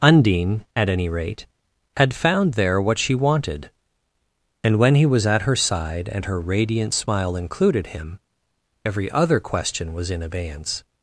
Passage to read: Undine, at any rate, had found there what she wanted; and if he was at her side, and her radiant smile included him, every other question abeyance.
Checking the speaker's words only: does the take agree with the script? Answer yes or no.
no